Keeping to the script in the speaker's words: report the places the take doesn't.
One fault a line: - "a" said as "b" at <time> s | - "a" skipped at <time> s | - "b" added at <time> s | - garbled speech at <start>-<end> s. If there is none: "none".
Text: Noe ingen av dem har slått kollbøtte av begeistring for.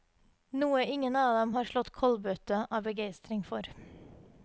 none